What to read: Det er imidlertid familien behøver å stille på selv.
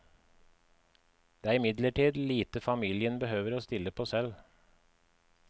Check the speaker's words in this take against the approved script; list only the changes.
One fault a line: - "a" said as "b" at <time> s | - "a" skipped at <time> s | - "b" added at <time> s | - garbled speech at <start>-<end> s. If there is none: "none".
- "lite" added at 2.3 s